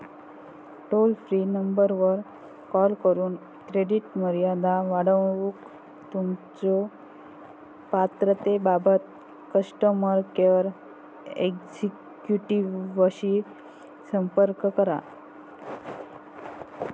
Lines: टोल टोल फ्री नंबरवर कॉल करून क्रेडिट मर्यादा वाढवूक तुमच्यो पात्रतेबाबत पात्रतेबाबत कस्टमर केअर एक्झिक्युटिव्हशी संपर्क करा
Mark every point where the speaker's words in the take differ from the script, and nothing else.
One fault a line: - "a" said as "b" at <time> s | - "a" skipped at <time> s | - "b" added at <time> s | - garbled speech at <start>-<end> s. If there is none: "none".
- "टोल" skipped at 1.1 s
- "पात्रतेबाबत" skipped at 9.0 s